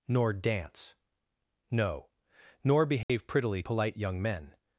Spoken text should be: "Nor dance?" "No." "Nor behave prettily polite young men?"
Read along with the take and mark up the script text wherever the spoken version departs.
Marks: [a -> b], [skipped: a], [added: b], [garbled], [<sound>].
"Nor dance?" "No." "Nor behave [dropout] prettily polite young men?"